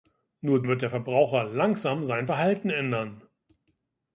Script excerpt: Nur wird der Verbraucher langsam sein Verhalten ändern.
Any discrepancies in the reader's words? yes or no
no